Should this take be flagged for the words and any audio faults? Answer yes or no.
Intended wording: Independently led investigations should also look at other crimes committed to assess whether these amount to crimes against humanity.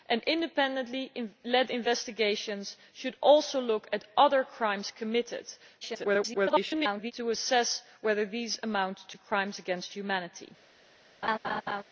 yes